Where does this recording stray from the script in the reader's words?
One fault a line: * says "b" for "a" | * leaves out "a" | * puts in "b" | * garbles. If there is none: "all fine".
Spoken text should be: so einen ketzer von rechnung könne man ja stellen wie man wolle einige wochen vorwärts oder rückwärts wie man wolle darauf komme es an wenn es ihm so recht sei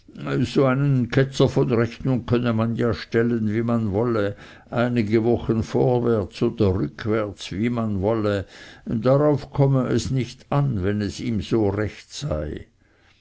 * puts in "nicht"